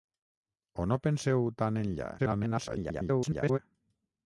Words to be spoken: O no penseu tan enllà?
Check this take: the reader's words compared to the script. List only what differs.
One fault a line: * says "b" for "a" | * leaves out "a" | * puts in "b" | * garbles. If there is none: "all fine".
* garbles